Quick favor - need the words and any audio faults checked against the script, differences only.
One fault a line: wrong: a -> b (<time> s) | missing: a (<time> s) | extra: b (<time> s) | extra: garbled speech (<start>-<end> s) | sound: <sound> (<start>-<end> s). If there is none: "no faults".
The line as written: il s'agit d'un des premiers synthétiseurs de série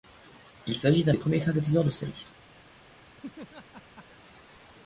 sound: laugh (3.2-4.1 s)